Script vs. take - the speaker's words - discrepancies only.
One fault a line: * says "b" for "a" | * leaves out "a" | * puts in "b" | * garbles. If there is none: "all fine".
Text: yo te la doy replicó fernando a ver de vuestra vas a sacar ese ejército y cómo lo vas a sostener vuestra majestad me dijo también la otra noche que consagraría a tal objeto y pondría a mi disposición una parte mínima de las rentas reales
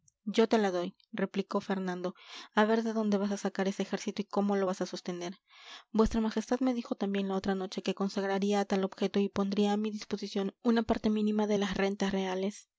* says "dónde" for "vuestra"